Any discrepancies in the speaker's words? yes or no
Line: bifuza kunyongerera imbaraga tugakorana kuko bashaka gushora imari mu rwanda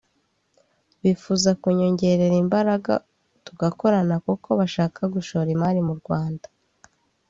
no